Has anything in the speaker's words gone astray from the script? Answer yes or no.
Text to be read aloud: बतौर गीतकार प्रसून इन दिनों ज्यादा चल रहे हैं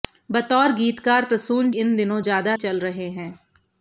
no